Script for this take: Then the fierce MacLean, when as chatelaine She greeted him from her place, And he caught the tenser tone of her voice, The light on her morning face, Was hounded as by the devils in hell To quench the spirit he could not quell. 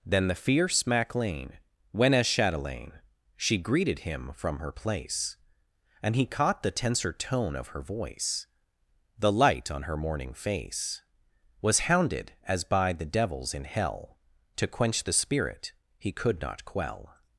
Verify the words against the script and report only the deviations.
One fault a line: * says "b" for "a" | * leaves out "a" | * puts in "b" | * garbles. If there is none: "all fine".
all fine